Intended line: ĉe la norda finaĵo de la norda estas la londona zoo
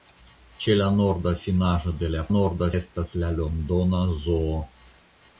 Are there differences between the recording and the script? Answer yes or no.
no